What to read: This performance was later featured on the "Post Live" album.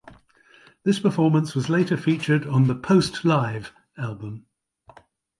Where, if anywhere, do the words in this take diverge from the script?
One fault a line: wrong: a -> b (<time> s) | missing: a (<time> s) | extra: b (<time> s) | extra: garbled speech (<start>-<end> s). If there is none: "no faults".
no faults